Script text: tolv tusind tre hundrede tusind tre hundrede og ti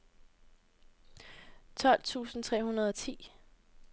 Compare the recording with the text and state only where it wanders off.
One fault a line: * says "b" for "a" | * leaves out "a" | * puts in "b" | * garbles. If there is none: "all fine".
* leaves out "tusind tre hundrede"